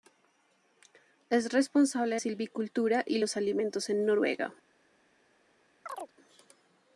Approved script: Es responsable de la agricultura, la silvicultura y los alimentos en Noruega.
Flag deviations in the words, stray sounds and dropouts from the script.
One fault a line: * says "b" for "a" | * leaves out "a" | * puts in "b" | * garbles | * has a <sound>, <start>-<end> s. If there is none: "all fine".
* leaves out "la agricultura la"
* has a chirp, 5.9-6.1 s